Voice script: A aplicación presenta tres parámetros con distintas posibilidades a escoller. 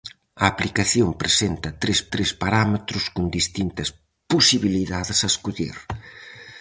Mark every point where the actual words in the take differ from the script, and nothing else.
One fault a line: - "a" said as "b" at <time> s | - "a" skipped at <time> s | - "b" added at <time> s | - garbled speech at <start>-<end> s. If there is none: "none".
- "tres" added at 2.1 s